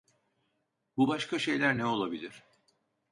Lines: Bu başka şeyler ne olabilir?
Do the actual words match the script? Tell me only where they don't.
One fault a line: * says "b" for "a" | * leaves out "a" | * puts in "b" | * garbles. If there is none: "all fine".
all fine